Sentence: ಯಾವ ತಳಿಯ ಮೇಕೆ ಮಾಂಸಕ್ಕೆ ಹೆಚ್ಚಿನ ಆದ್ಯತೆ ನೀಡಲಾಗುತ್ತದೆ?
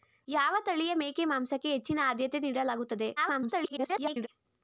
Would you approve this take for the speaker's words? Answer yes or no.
no